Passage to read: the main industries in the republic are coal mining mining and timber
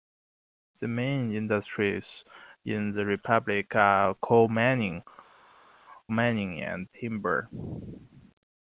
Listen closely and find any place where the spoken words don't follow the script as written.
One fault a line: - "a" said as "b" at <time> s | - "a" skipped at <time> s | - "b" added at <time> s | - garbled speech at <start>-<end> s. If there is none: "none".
none